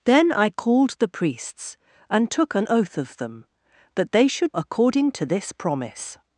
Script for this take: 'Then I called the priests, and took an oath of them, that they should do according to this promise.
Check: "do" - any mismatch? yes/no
yes